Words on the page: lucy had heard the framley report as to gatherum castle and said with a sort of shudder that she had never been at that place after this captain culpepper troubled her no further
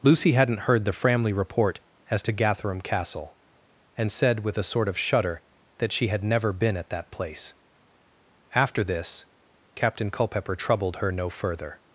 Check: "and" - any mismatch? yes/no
no